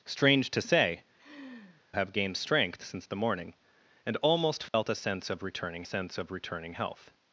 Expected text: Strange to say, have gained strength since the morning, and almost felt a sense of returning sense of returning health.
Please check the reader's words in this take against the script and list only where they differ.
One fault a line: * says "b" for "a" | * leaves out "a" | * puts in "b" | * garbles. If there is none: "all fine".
all fine